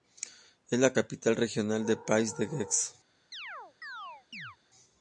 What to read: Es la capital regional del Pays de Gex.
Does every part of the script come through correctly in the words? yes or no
yes